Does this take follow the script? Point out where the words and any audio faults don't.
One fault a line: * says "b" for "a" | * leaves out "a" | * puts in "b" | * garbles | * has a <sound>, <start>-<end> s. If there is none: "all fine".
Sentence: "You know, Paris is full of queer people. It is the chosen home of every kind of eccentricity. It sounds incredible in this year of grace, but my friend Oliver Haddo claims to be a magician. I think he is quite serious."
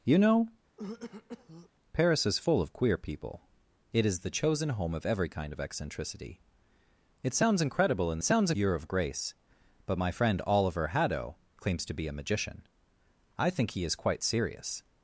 * has a throat clearing, 0.8-1.7 s
* says "sounds" for "this"